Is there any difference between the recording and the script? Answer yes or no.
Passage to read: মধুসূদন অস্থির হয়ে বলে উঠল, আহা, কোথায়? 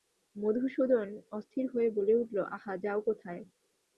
yes